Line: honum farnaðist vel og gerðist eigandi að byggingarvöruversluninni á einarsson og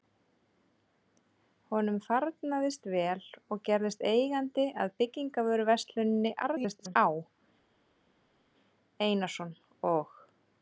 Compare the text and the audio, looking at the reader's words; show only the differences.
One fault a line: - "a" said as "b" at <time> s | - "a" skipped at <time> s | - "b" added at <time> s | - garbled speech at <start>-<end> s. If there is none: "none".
- garbled speech at 6.4-7.0 s